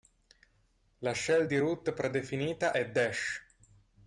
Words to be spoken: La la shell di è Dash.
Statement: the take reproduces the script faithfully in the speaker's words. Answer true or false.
false